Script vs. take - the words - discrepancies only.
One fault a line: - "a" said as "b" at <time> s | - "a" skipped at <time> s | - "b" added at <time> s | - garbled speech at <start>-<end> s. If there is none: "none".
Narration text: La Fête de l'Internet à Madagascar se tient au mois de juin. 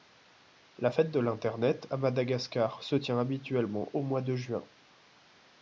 - "habituellement" added at 3.2 s